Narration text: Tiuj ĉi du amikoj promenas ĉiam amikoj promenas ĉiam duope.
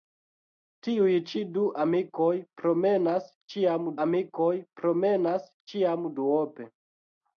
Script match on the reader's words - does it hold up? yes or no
yes